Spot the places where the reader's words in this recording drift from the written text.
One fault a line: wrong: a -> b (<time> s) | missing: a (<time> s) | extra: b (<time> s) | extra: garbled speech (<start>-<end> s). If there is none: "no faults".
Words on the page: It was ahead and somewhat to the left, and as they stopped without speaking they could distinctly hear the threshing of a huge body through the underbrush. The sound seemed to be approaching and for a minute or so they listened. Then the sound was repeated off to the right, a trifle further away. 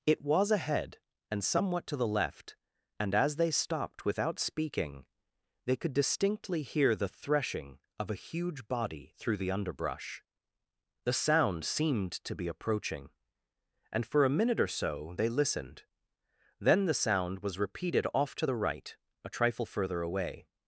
no faults